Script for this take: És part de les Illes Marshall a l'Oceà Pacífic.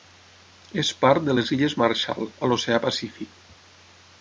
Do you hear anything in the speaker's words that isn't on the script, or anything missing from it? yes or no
no